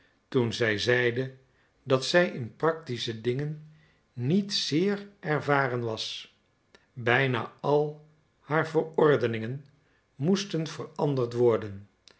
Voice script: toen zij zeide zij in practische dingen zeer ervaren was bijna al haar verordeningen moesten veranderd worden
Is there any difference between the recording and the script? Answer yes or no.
yes